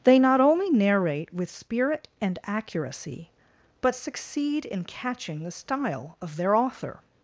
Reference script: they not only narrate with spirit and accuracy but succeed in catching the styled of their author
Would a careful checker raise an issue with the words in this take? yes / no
yes